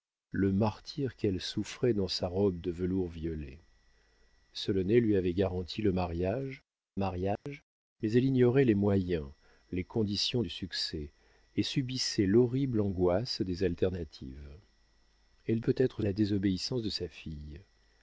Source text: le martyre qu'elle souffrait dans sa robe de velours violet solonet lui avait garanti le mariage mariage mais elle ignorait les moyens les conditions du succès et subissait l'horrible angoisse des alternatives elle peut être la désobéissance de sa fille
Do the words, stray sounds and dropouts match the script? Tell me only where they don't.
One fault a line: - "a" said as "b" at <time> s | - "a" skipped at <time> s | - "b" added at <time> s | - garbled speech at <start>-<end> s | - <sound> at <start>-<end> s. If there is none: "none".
- dropout at 7.4-7.5 s